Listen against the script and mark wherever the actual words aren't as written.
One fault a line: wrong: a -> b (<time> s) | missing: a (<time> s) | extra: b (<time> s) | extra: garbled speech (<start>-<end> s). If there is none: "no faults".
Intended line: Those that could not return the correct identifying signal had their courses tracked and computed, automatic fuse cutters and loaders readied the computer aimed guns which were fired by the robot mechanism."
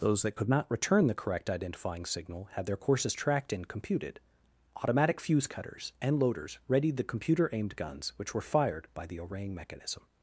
wrong: robot -> orang (9.2 s)